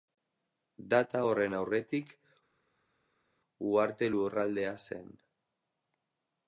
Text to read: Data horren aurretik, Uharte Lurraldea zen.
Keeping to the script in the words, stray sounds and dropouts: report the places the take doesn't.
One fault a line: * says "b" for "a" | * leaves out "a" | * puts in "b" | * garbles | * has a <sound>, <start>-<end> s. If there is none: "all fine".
all fine